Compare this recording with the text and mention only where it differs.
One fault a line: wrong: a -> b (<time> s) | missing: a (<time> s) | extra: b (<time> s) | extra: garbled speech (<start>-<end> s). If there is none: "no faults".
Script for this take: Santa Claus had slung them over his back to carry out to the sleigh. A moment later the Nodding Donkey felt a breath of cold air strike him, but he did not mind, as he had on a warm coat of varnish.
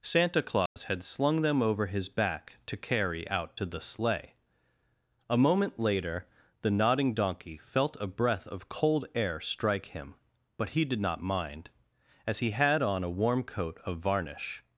no faults